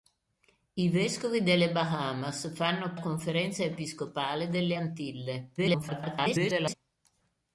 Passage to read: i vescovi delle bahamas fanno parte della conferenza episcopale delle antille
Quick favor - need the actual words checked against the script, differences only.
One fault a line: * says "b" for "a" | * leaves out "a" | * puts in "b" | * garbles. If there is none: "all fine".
* leaves out "parte della"
* garbles